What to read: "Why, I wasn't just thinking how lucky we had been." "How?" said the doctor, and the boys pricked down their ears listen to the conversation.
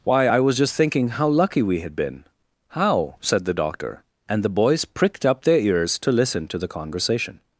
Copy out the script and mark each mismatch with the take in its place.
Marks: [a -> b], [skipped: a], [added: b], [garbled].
"Why, I [wasn't -> was] just thinking how lucky we had been." "How?" said the doctor, and the boys pricked [down -> up] their ears [added: to] listen to the conversation.